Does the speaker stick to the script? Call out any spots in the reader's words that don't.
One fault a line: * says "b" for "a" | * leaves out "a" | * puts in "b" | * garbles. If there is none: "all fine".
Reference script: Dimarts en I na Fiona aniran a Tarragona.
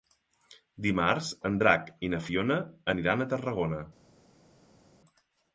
* puts in "Drac"